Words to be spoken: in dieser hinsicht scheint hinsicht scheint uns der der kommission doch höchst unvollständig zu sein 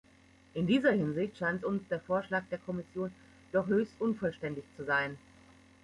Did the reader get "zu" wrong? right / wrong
right